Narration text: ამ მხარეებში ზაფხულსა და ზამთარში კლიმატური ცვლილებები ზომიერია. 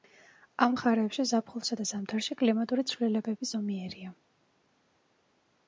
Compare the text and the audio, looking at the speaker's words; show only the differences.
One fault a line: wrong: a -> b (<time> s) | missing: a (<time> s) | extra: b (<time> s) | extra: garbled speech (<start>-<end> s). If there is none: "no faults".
no faults